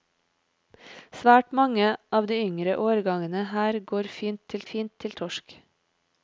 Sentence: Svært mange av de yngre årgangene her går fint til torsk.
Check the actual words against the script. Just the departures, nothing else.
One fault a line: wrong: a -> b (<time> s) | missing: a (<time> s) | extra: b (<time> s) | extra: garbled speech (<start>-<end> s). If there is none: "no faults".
extra: fint til (4.7 s)